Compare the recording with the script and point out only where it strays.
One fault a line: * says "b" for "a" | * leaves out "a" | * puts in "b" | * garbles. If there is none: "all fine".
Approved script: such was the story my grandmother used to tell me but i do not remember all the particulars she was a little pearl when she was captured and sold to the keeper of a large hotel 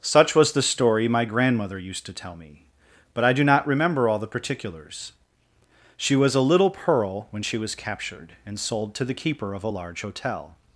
all fine